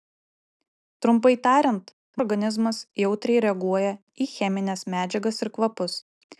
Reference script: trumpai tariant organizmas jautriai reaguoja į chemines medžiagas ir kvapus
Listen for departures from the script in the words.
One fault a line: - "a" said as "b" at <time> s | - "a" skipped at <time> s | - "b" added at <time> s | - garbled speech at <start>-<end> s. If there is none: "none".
none